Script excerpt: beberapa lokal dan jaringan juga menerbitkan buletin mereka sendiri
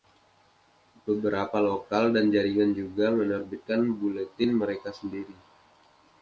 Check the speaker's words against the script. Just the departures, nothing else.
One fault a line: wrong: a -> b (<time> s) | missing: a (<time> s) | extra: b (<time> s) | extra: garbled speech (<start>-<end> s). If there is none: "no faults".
no faults